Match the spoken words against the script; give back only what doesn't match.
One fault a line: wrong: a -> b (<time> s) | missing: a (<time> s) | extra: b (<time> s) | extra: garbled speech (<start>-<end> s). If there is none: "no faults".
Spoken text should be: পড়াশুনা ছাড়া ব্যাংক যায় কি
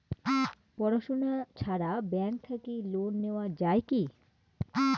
extra: থাকি লোন নেওয়া (2.4 s)